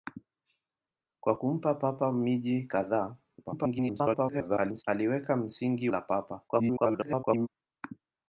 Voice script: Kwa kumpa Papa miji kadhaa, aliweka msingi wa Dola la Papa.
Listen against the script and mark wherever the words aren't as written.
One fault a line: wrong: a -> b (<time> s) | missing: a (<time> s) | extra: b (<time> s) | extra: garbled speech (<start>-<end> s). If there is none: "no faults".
extra: garbled speech (3.4-4.8 s)
missing: wa Dola (5.9 s)
extra: garbled speech (6.5-7.5 s)